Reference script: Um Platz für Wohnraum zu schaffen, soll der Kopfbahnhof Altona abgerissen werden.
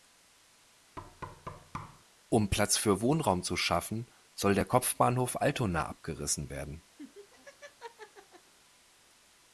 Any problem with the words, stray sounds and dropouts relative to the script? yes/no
yes